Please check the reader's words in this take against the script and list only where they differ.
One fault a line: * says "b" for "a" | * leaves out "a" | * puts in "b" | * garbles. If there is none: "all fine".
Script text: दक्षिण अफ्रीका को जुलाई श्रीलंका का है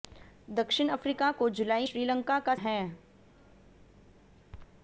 all fine